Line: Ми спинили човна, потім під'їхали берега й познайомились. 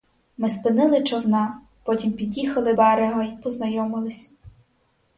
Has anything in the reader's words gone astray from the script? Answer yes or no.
no